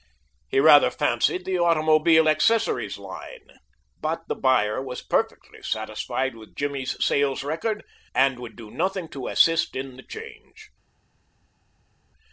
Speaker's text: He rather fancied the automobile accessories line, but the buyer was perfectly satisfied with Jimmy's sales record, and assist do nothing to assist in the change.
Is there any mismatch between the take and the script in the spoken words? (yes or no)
yes